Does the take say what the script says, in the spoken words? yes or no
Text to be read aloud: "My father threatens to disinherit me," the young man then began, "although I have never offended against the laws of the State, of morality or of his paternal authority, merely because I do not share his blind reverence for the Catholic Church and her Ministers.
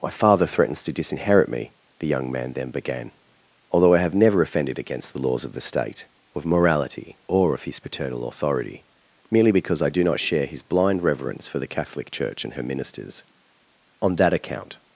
no